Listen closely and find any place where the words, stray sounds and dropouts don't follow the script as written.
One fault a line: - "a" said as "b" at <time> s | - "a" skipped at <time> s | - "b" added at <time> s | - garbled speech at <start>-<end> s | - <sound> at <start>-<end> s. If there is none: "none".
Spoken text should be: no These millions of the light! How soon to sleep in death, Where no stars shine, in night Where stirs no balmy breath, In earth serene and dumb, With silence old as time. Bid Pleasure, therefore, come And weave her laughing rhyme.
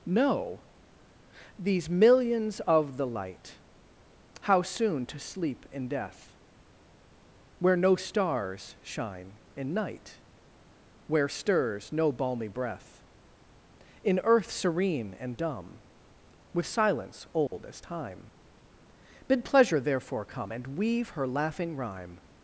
- dropout at 17.5-17.5 s